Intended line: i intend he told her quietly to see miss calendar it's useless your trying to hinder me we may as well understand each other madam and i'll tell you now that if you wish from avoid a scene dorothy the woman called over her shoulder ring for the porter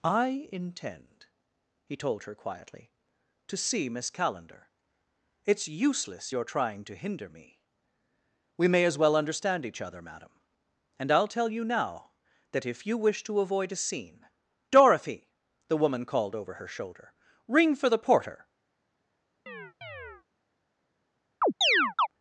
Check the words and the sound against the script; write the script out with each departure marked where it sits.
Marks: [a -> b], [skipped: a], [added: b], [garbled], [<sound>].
i intend he told her quietly to see miss calendar it's useless your trying to hinder me we may as well understand each other madam and i'll tell you now that if you wish [from -> to] avoid a scene dorothy the woman called over her shoulder ring for the porter [chirp] [chirp]